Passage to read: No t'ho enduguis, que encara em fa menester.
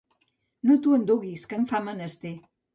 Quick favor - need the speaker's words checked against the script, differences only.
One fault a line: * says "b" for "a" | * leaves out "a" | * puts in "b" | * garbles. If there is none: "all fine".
* leaves out "encara"